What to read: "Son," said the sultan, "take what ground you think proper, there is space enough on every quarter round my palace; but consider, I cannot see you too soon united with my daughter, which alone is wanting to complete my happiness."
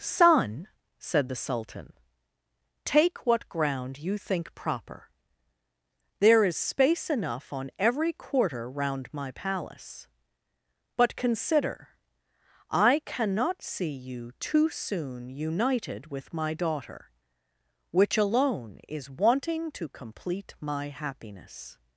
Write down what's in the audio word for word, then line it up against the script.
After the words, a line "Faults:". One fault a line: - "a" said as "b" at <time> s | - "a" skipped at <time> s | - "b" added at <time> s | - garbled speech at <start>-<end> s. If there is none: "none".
"Son," said the sultan, "take what ground you think proper, there is space enough on every quarter round my palace; but consider, I cannot see you too soon united with my daughter, which alone is wanting to complete my happiness."
Faults:
none